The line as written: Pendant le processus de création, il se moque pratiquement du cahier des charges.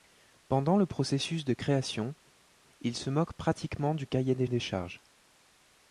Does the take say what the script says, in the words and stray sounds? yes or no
no